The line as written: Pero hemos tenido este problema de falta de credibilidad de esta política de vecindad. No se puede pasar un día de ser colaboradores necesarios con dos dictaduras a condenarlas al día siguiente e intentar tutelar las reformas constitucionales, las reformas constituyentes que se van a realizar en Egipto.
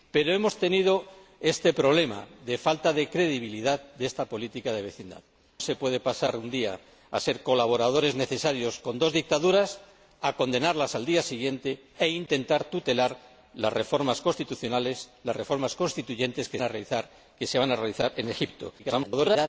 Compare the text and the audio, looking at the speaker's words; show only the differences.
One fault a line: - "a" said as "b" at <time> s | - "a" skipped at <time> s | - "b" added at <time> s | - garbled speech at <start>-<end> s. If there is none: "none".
- "No" skipped at 5.2 s
- "se van" skipped at 16.6 s
- garbled speech at 18.8-19.5 s